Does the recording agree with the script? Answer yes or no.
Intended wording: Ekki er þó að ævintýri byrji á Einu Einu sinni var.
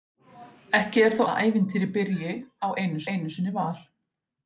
yes